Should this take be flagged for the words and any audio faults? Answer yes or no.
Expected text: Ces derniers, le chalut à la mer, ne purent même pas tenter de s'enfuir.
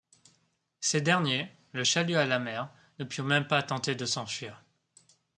no